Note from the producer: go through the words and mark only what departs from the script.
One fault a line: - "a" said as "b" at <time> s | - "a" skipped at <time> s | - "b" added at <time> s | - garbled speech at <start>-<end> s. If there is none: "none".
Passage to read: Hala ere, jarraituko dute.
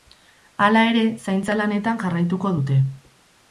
- "zaintza lanetan" added at 1.3 s